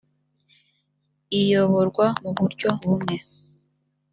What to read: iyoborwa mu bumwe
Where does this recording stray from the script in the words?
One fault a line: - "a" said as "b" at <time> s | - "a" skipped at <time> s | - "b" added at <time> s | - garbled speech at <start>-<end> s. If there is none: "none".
- "buryo" added at 2.4 s